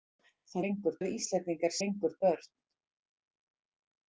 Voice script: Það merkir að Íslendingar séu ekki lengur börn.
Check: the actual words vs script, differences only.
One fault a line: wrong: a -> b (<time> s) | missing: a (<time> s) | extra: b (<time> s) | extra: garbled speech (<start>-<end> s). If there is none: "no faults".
wrong: merkir -> lengur (0.7 s)
missing: séu ekki (1.8 s)